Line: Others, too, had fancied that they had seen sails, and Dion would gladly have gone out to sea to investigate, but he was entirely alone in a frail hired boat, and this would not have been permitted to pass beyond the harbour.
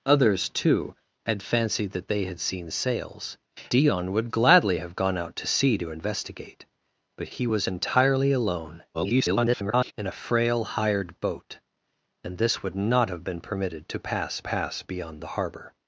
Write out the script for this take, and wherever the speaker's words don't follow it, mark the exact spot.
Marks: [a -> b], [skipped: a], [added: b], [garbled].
Others, too, had fancied that they had seen sails, [skipped: and] Dion would gladly have gone out to sea to investigate, but he was entirely alone [garbled] in a frail hired boat, and this would not have been permitted to pass [added: pass] beyond the harbour.